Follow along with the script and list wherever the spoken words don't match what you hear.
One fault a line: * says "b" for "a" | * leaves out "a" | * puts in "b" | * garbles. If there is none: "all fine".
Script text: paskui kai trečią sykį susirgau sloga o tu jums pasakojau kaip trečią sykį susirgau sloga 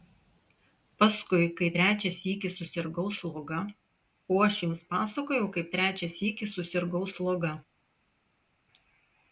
* says "aš" for "tu"